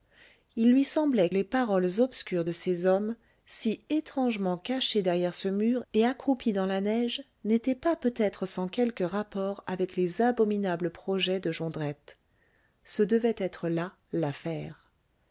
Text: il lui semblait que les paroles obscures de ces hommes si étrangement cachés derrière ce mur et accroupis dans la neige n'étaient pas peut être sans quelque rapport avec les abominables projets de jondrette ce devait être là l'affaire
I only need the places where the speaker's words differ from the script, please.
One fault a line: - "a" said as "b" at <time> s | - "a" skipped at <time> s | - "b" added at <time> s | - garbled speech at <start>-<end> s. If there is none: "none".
- "que" skipped at 1.3 s